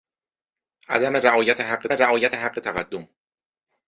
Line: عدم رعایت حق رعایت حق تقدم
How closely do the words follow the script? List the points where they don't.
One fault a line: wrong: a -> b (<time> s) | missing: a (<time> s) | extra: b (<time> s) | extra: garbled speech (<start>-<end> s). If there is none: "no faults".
no faults